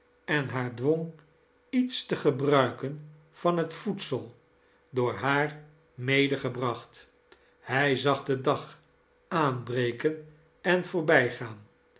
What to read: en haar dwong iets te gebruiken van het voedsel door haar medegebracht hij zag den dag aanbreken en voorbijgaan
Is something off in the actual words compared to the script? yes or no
no